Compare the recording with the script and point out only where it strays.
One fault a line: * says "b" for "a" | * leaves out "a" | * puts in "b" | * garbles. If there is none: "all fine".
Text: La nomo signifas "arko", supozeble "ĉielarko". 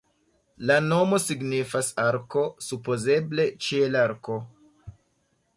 all fine